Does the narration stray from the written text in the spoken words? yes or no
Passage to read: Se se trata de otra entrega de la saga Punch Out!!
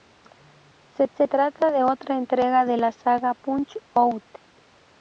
no